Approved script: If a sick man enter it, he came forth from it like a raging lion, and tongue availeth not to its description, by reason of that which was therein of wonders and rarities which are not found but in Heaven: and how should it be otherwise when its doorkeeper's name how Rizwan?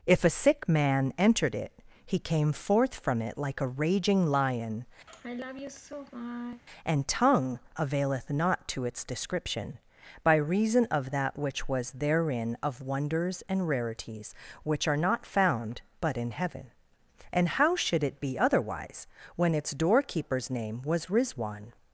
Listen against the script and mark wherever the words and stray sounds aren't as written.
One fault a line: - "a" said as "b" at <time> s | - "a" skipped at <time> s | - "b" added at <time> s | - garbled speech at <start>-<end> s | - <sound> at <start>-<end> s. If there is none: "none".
- "enter" said as "entered" at 1.2 s
- sigh at 5.1-6.6 s
- "how" said as "was" at 20.8 s